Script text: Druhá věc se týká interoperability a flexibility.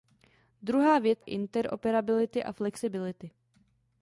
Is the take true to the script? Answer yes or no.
no